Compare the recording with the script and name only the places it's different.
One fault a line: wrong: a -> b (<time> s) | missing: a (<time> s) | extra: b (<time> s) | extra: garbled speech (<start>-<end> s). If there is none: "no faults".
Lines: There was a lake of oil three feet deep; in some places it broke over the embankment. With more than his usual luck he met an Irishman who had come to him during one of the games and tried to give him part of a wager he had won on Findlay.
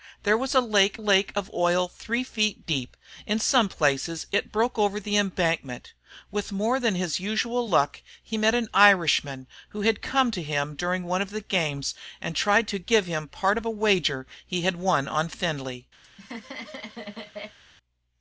extra: lake (0.9 s)